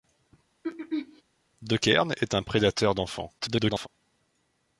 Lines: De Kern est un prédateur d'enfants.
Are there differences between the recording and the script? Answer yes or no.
yes